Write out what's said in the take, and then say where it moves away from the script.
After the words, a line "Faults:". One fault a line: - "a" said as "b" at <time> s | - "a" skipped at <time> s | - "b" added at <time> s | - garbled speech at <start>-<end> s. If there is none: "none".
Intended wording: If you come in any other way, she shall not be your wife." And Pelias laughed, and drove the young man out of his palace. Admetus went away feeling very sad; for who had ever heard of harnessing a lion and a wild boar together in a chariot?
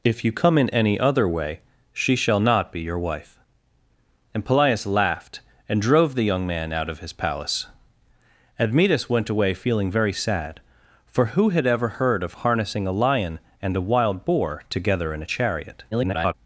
If you come in any other way, she shall not be your wife." And Pelias laughed, and drove the young man out of his palace. Admetus went away feeling very sad; for who had ever heard of harnessing a lion and a wild boar together in a chariot? [garbled]
Faults:
- garbled speech at 15.9-16.3 s